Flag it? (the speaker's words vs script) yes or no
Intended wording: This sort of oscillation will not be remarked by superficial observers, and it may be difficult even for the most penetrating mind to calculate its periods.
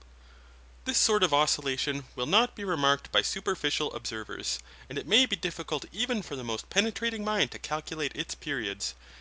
no